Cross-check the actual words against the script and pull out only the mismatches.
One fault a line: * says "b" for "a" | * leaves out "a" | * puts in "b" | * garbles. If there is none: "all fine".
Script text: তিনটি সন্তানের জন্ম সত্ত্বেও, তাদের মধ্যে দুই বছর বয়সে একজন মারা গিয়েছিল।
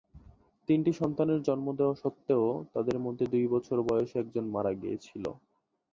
* puts in "দেওয়া"